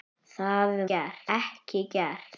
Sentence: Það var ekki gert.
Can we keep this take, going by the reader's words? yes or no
no